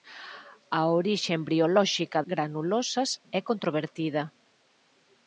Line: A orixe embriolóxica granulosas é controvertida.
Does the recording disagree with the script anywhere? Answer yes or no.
no